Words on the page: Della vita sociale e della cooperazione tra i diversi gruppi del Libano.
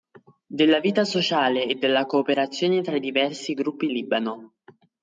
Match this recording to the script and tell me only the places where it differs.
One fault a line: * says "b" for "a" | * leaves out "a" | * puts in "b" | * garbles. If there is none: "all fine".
* leaves out "del"